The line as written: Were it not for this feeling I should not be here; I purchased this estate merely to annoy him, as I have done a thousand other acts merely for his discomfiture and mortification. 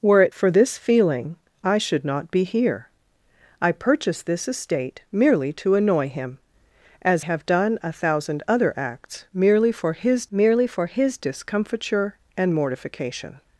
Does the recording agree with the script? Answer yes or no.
no